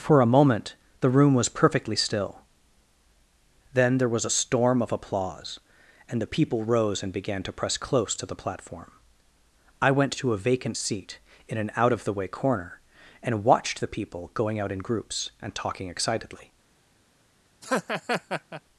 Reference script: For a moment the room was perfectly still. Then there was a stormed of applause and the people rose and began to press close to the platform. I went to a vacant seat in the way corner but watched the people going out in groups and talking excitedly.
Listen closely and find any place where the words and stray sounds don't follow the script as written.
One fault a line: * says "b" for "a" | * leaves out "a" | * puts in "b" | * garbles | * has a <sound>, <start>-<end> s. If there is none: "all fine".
* says "storm" for "stormed"
* puts in "an out of"
* says "and" for "but"
* has a laugh, 17.6-18.6 s